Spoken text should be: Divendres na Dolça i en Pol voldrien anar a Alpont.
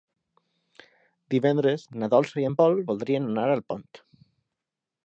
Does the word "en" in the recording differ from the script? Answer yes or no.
no